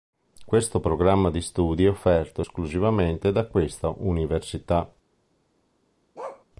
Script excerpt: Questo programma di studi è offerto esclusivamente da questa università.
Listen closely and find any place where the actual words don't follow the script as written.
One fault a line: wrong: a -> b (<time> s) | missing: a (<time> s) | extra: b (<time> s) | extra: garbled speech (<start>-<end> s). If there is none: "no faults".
no faults